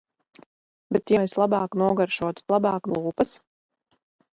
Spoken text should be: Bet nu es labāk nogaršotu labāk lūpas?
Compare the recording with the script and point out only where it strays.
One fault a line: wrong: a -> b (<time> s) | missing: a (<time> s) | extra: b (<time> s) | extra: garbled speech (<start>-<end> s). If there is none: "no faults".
no faults